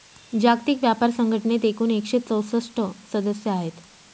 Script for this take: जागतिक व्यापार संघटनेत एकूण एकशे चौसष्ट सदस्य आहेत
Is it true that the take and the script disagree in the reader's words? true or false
false